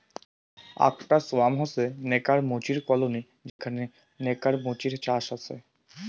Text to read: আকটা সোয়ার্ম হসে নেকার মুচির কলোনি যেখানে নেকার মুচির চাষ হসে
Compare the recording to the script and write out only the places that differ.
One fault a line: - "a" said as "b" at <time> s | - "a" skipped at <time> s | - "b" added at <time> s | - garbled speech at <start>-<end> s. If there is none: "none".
none